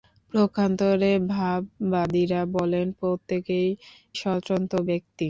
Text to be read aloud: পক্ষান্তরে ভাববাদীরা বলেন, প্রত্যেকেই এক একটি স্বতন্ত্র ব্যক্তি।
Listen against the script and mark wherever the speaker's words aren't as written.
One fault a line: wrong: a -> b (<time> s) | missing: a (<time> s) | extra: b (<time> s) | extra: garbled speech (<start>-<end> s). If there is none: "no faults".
missing: এক একটি (3.7 s)